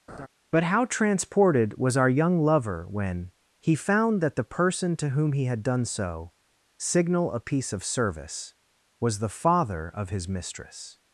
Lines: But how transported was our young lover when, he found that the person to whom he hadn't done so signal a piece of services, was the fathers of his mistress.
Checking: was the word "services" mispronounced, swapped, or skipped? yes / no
yes